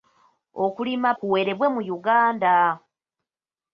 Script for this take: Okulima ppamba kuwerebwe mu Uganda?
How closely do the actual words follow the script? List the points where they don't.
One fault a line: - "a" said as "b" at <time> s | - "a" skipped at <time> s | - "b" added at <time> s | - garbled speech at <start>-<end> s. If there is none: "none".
- "ppamba" skipped at 1.1 s